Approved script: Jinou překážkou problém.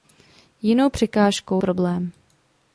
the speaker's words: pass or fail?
pass